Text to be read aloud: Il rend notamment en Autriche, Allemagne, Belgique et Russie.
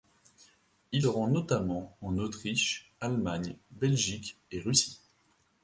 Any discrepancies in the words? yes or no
no